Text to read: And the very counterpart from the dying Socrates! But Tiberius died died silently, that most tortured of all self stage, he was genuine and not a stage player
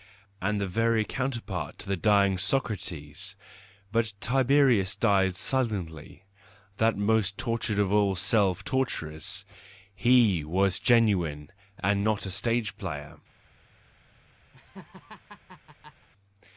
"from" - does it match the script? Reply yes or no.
no